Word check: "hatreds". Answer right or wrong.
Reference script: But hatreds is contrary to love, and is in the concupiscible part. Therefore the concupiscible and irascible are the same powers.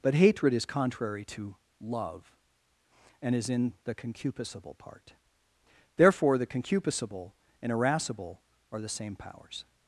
wrong